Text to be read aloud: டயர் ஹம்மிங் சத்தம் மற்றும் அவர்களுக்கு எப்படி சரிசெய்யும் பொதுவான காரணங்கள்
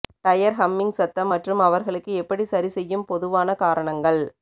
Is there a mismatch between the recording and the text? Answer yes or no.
no